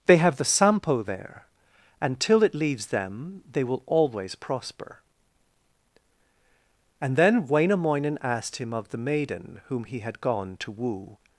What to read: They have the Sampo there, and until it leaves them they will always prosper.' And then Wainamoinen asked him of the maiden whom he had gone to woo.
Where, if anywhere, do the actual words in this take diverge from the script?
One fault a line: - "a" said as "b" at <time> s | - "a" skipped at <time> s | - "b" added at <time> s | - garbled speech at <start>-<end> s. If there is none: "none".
- "until" said as "till" at 2.2 s